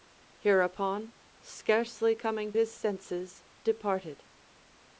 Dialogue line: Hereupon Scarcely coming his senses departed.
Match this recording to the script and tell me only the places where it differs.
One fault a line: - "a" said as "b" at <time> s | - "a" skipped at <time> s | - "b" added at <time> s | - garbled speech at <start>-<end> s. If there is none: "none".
none